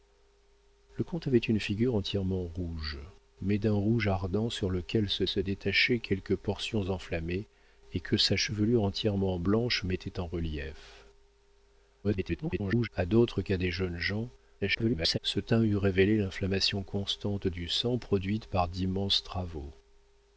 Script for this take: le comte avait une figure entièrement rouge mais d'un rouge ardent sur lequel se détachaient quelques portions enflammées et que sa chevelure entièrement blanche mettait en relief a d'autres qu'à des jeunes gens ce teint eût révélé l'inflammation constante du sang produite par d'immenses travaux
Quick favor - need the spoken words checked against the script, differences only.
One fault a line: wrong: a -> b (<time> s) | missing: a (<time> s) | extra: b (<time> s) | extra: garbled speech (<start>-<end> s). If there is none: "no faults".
extra: se (5.3 s)
extra: garbled speech (12.0-12.9 s)
extra: garbled speech (14.6-15.2 s)